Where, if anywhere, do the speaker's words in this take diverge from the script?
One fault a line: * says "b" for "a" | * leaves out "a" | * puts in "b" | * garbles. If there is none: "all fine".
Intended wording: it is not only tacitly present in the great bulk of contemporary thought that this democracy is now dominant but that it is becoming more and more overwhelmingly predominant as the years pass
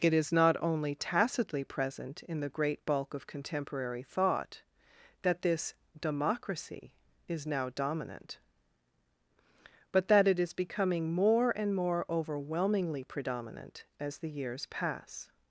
all fine